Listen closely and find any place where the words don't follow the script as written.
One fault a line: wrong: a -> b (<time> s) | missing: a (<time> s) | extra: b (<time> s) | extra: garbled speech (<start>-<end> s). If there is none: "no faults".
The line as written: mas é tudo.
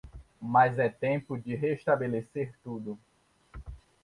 extra: tempo de restabelecer (0.9 s)